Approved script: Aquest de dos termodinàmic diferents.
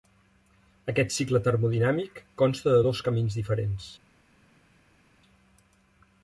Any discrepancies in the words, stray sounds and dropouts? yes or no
yes